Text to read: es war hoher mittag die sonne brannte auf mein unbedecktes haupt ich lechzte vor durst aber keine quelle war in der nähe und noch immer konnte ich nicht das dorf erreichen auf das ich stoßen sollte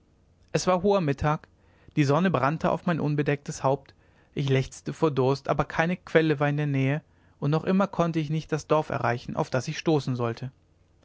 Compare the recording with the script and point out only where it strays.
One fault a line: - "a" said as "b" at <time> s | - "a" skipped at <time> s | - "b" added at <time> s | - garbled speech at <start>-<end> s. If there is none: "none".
none